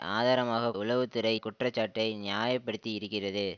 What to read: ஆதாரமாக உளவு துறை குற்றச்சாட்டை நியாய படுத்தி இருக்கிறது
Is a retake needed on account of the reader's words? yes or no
no